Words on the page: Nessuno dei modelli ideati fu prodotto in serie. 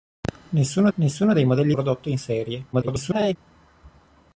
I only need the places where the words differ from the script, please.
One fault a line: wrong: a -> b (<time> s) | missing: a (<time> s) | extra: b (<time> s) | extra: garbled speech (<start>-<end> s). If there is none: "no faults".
extra: nessuno (0.9 s)
missing: ideati fu (1.7 s)
extra: garbled speech (2.7-3.4 s)